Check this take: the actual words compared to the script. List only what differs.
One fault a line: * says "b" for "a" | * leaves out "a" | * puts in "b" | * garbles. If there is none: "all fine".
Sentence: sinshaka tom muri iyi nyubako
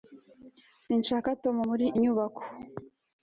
* leaves out "iyi"